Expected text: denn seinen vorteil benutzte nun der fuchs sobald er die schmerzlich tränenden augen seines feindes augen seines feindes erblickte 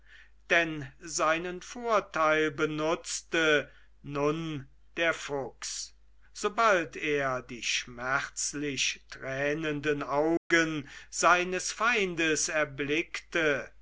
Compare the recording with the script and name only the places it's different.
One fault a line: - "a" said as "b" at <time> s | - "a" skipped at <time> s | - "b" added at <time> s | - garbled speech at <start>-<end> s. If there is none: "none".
- "augen seines feindes" skipped at 12.5 s